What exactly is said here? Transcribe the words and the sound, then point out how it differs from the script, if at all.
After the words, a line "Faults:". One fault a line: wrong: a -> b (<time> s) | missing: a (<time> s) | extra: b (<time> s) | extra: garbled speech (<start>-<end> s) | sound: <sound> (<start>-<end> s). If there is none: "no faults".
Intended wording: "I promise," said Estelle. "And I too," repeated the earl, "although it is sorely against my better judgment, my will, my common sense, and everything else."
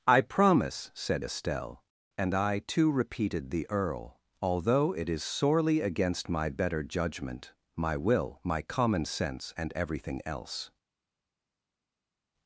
"I promise," said Estelle. "And I too," repeated the earl, "although it is sorely against my better judgment, my will, my common sense, and everything else."
Faults:
no faults